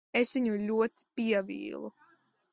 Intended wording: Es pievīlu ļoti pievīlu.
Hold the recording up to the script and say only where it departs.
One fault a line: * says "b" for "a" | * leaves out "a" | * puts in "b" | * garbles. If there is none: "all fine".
* says "viņu" for "pievīlu"